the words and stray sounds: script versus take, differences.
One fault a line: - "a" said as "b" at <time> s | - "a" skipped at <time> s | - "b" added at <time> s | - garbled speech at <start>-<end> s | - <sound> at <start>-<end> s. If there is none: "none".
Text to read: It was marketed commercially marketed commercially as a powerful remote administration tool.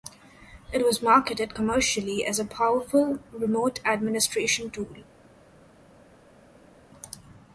- "marketed commercially" skipped at 2.2 s